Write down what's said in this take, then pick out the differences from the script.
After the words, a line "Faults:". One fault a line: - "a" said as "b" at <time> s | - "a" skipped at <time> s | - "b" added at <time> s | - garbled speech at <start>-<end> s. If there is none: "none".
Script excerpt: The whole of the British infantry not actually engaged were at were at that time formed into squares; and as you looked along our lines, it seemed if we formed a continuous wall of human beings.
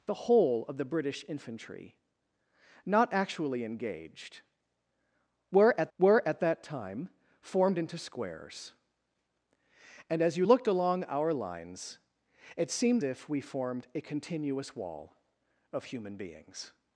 The whole of the British infantry not actually engaged were at were at that time formed into squares; and as you looked along our lines, it seemed if we formed a continuous wall of human beings.
Faults:
none